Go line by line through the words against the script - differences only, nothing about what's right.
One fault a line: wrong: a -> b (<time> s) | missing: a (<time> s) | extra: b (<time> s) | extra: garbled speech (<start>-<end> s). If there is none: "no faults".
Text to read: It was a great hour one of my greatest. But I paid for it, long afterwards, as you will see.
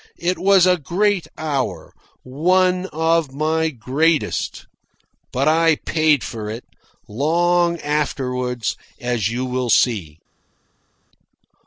no faults